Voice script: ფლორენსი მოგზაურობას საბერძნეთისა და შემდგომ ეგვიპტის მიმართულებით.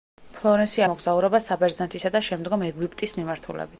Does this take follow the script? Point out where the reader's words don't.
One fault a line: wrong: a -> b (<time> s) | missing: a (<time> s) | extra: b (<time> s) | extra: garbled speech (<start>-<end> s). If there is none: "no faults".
no faults